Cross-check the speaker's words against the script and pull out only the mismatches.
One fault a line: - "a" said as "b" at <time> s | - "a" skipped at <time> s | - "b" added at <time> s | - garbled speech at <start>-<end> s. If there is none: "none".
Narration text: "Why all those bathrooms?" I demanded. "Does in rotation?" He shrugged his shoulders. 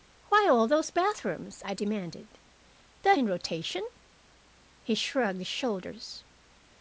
none